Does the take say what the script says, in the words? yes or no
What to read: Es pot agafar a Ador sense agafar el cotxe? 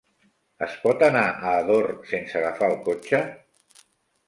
no